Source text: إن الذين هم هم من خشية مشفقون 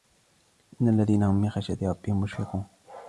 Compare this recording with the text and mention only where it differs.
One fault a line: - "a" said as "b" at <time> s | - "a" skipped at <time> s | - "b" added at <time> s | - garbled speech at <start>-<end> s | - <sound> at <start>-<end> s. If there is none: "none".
- "هم" skipped at 1.4 s
- "ربهم" added at 1.8 s